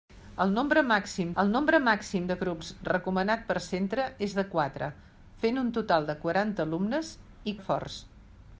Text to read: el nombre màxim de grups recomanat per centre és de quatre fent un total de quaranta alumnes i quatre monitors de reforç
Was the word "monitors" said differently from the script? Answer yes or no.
yes